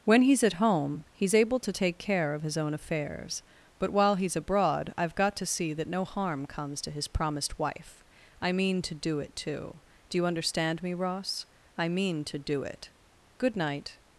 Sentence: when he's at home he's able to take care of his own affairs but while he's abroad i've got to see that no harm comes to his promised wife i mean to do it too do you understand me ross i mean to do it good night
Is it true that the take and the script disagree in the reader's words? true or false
false